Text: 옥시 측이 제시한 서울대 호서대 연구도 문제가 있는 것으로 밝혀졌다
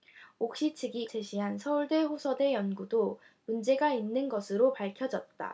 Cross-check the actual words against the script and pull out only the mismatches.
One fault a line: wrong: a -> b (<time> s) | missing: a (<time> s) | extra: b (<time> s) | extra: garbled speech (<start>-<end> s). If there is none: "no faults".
no faults